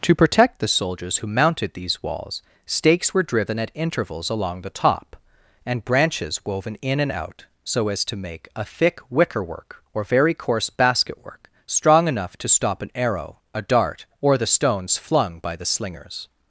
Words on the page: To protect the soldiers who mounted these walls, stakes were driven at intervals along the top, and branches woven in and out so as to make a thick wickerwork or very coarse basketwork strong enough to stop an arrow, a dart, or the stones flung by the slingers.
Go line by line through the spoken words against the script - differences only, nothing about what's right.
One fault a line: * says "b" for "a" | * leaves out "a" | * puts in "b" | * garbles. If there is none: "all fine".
all fine